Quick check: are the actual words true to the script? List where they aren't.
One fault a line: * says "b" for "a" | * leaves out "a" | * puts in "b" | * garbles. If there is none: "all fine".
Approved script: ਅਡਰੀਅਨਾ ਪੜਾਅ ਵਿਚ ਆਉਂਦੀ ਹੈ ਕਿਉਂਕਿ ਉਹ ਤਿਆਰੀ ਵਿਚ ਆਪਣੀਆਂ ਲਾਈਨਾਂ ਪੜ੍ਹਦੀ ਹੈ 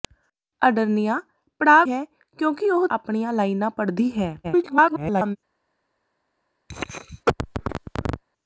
* leaves out "ਵਿਚ ਆਉਂਦੀ"
* leaves out "ਤਿਆਰੀ ਵਿਚ"
* garbles